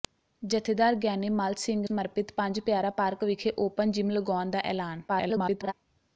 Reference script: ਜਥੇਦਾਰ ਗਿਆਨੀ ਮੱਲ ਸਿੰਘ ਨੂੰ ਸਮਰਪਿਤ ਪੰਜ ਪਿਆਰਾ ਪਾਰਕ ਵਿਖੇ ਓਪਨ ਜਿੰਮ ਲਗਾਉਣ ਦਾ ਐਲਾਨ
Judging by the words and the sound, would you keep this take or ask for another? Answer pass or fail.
fail